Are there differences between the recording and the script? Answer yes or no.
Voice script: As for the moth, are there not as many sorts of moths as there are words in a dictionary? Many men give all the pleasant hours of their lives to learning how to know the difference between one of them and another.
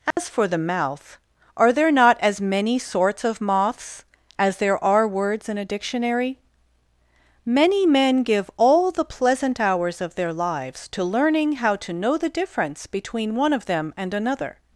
yes